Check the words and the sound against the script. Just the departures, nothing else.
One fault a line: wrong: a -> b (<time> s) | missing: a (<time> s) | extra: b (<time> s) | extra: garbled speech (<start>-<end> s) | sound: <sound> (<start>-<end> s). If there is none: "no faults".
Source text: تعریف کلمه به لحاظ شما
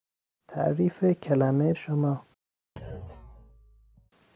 missing: به لحاظ (1.7 s)
sound: thud (2.8-4.1 s)